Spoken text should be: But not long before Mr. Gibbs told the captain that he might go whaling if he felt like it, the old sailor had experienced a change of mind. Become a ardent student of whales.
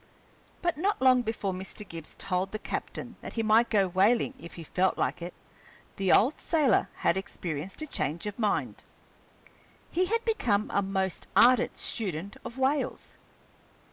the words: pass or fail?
fail